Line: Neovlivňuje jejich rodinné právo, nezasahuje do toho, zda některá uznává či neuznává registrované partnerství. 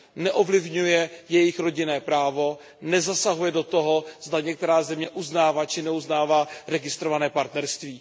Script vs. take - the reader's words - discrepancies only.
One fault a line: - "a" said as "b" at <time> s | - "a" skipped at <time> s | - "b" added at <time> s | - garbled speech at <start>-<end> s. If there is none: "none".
- "země" added at 4.8 s